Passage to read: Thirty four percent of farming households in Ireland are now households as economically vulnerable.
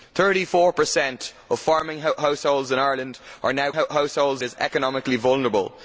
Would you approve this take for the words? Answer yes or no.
yes